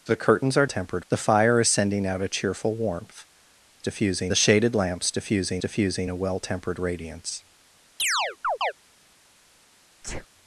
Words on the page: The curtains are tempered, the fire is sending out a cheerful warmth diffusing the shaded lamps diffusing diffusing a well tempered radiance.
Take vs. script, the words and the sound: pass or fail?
fail